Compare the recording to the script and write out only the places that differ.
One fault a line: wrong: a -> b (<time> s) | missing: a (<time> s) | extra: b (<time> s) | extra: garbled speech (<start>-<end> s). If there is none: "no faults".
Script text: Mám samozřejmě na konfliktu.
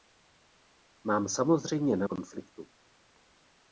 no faults